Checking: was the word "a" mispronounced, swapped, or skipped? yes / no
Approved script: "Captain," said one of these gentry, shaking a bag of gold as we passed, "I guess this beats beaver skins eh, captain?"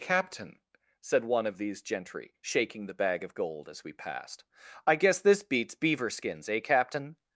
yes